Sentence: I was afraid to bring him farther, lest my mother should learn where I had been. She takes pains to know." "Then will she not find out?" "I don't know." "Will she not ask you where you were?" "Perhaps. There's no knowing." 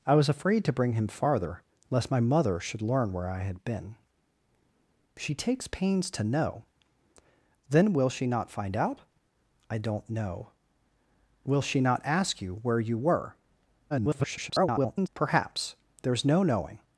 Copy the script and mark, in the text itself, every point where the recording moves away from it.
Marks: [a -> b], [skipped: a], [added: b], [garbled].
I was afraid to bring him farther, lest my mother should learn where I had been. She takes pains to know." "Then will she not find out?" "I don't know." "Will she not ask you where you were?" [garbled] "Perhaps. There's no knowing."